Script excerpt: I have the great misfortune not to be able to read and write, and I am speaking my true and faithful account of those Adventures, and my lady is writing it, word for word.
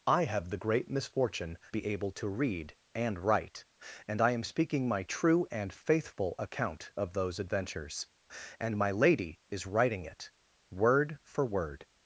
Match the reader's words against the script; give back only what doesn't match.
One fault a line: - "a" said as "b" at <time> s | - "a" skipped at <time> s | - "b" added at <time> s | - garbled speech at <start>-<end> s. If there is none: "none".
- "not to" skipped at 1.6 s